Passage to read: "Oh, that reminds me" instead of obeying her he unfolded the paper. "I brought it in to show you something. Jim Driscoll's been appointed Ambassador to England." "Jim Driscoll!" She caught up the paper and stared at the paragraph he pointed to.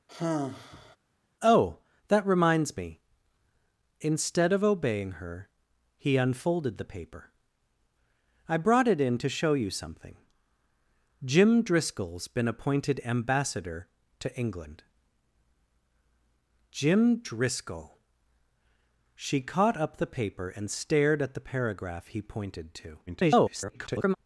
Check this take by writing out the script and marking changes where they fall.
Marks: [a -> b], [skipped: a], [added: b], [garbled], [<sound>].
[sigh] "Oh, that reminds me" instead of obeying her he unfolded the paper. "I brought it in to show you something. Jim Driscoll's been appointed Ambassador to England." "Jim Driscoll!" She caught up the paper and stared at the paragraph he pointed to. [garbled]